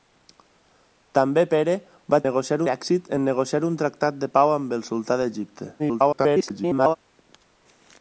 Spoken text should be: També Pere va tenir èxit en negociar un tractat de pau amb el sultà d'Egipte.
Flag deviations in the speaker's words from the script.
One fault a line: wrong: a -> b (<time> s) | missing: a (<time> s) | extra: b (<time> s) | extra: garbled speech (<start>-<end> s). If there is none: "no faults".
wrong: tenir -> negociar (2.3 s)
extra: garbled speech (5.8-7.0 s)